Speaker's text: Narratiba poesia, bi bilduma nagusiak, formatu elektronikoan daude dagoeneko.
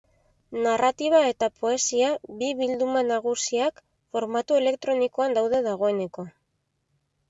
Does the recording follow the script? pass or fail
fail